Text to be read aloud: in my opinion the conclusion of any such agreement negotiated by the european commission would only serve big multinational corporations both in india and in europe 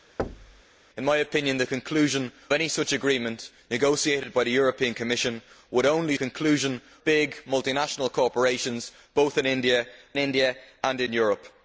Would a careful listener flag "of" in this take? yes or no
yes